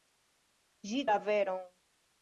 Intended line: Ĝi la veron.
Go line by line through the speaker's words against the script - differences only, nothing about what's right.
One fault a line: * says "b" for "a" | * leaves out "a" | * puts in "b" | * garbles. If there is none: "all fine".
all fine